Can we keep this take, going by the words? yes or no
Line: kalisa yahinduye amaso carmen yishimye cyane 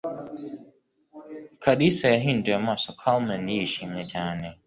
yes